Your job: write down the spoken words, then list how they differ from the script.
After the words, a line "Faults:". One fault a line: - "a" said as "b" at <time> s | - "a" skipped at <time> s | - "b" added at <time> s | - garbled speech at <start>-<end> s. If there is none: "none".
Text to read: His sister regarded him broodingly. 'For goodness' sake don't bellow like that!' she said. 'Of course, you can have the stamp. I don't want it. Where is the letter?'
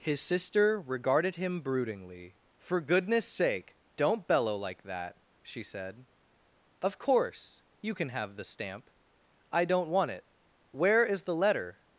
His sister regarded him broodingly. 'For goodness' sake don't bellow like that!' she said. 'Of course, you can have the stamp. I don't want it. Where is the letter?'
Faults:
none